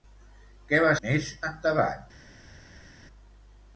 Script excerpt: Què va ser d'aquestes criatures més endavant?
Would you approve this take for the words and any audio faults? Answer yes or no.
no